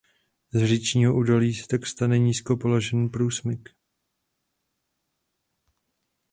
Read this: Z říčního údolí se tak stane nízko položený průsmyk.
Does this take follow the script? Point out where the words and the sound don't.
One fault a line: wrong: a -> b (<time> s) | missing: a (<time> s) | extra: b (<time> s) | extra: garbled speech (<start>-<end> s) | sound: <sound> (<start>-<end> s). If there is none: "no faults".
no faults